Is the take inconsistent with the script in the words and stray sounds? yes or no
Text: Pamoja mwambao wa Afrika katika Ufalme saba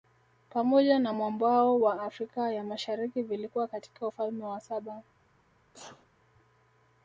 yes